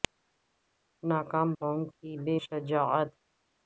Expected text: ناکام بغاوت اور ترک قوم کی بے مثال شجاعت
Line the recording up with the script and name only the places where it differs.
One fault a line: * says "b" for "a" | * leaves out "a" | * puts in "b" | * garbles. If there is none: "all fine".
* leaves out "بغاوت اور ترک"
* leaves out "مثال"